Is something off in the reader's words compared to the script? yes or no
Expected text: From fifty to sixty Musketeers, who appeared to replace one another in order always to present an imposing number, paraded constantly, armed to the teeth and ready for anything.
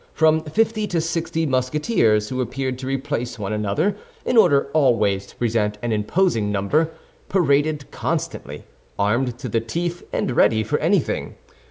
no